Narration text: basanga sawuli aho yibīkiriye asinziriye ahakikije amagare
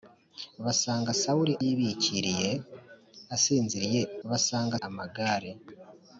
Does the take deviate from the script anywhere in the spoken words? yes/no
yes